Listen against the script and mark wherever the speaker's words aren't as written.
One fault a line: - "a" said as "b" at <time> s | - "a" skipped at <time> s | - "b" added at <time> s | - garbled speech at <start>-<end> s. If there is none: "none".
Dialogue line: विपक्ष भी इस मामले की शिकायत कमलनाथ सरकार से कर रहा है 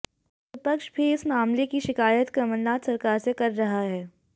none